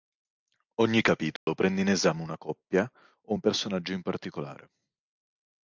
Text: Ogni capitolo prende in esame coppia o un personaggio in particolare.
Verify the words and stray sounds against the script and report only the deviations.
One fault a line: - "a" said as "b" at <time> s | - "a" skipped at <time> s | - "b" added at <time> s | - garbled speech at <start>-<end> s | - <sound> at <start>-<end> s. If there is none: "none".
- dropout at 1.4-1.5 s
- "una" added at 2.2 s